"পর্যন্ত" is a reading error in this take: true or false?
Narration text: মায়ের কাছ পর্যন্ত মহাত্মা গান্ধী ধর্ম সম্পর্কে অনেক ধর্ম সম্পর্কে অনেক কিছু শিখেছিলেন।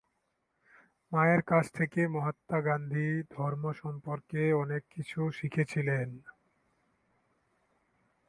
true